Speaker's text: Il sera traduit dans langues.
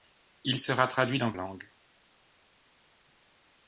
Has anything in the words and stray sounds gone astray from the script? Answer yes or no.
no